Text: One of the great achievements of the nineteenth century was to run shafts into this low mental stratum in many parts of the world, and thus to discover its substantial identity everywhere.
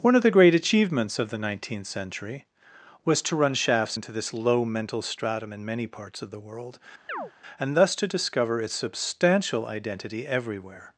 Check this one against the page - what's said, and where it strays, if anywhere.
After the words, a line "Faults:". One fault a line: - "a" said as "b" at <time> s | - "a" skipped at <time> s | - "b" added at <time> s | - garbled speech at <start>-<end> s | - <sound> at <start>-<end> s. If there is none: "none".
One of the great achievements of the nineteenth century was to run shafts into this low mental stratum in many parts of the world, and thus to discover its substantial identity everywhere.
Faults:
- chirp at 7.1-7.3 s